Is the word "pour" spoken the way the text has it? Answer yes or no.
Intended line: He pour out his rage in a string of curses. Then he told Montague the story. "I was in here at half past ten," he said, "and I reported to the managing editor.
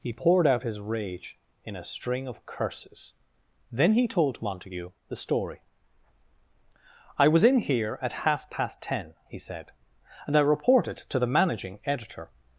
no